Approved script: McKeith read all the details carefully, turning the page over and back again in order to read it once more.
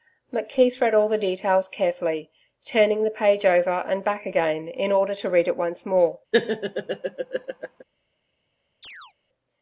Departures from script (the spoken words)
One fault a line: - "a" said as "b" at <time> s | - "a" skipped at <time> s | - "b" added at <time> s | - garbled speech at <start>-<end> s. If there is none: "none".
none